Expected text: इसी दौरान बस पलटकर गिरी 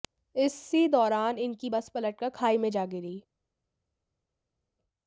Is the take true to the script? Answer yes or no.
no